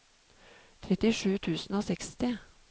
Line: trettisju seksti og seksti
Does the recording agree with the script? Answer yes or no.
no